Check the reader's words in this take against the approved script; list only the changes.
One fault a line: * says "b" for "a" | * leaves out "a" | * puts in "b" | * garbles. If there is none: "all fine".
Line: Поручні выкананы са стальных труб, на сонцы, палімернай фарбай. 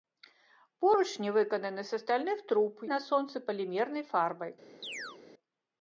all fine